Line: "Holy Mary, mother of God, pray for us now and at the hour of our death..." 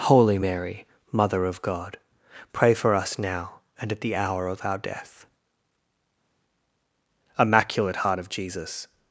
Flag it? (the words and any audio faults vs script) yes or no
yes